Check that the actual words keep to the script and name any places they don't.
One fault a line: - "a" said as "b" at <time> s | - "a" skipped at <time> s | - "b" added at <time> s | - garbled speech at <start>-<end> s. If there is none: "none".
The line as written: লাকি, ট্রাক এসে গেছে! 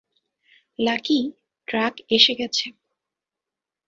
none